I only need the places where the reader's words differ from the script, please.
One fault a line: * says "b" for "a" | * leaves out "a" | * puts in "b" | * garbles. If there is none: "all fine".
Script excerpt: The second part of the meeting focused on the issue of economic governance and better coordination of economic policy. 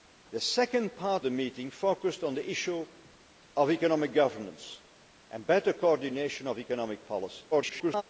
* leaves out "of"
* garbles